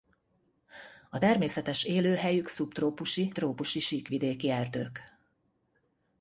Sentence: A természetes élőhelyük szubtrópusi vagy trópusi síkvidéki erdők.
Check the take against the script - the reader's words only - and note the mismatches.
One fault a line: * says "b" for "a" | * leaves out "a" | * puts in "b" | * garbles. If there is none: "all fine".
* leaves out "vagy"